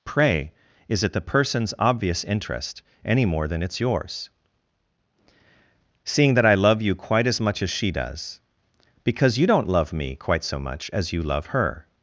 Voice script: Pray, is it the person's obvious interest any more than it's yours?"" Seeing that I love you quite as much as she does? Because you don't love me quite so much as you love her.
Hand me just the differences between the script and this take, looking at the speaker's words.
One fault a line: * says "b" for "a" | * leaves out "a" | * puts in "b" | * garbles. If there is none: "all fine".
all fine